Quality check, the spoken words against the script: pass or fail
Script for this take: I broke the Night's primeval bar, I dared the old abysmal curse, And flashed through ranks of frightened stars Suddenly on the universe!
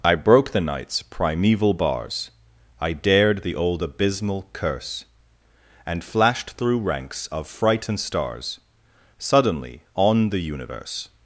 fail